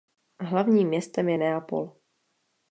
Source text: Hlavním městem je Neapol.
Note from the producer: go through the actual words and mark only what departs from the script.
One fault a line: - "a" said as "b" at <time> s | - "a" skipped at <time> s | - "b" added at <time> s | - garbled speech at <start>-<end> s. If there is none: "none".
none